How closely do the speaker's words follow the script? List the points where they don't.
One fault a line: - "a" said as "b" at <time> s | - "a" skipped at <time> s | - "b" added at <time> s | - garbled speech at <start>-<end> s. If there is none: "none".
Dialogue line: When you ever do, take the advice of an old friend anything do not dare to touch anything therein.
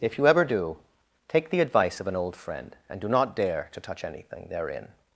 - "When" said as "If" at 0.0 s
- "anything" said as "and" at 2.9 s